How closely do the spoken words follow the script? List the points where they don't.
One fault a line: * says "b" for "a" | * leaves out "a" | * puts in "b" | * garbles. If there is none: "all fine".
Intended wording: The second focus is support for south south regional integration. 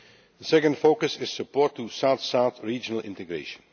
all fine